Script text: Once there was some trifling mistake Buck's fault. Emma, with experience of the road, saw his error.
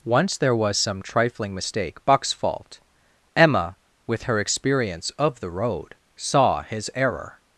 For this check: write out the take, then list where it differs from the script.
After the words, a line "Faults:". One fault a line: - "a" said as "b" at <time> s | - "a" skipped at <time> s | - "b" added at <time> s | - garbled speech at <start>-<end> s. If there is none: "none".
Once there was some trifling mistake Buck's fault. Emma, with her experience of the road, saw his error.
Faults:
- "her" added at 4.2 s